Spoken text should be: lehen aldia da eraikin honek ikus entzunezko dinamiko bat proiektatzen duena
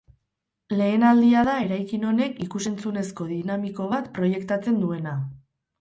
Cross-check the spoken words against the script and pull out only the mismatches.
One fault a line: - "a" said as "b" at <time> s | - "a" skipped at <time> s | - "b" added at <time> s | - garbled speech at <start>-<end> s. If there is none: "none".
none